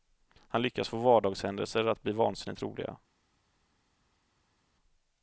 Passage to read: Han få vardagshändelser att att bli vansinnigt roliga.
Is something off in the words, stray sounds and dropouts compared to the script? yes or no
yes